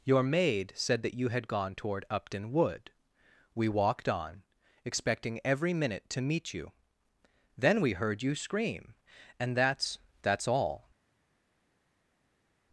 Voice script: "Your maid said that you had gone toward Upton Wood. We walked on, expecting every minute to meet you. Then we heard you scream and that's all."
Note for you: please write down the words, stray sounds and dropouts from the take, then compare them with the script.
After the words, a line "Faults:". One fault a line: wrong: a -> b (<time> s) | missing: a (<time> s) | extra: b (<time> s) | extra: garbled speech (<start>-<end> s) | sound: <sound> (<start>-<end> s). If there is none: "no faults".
"Your maid said that you had gone toward Upton Wood. We walked on, expecting every minute to meet you. Then we heard you scream and that's that's all."
Faults:
extra: that's (10.2 s)